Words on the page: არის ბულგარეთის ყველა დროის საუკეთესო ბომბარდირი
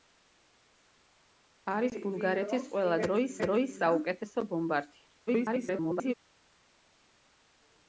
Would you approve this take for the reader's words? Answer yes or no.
no